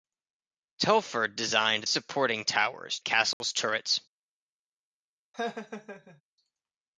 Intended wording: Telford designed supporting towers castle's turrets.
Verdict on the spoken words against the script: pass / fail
pass